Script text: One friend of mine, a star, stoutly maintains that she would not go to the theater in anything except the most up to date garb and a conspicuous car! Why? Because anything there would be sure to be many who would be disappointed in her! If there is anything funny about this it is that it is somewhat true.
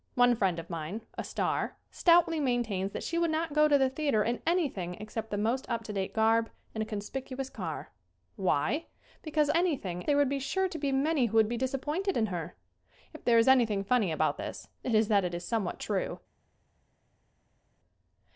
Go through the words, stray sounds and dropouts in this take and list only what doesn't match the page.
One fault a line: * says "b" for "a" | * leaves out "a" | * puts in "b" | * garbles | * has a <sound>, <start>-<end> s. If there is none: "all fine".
all fine